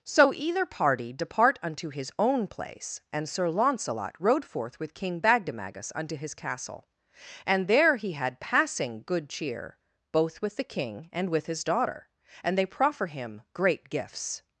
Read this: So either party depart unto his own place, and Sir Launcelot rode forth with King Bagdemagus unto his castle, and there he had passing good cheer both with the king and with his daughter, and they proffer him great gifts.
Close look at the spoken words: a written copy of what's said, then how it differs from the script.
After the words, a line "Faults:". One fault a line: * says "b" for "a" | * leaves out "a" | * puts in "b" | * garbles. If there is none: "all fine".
So either party depart unto his own place, and Sir Launcelot rode forth with King Bagdemagus unto his castle, and there he had passing good cheer both with the king and with his daughter, and they proffer him great gifts.
Faults:
all fine